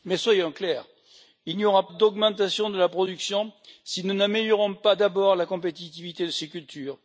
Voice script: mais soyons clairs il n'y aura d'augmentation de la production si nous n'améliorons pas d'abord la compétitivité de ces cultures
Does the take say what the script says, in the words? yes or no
yes